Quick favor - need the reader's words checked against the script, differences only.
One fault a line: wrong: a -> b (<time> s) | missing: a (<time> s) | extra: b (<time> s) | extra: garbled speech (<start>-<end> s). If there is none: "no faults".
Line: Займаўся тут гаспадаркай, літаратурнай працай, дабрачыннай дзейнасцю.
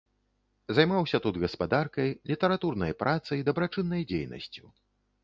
no faults